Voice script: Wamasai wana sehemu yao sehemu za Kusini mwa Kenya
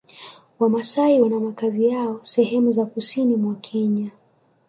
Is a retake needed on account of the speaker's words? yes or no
yes